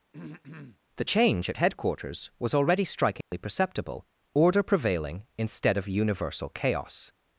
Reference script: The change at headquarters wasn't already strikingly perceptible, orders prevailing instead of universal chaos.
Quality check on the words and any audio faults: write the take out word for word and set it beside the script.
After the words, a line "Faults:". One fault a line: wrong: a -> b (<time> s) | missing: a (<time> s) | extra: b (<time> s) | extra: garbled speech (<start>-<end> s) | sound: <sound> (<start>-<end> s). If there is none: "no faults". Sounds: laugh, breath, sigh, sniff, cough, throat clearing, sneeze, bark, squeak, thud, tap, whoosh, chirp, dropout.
The change at headquarters was already strikingly perceptible, order prevailing instead of universal chaos.
Faults:
sound: throat clearing (0.1-0.8 s)
wrong: wasn't -> was (2.4 s)
sound: dropout (3.2-3.3 s)
wrong: orders -> order (4.3 s)